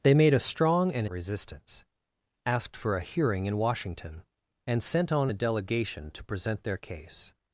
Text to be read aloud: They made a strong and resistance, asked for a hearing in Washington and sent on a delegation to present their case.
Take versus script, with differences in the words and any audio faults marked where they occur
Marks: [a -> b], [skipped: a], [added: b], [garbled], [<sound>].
They made a strong and resistance, asked for a hearing in Washington and sent on a delegation to present their case.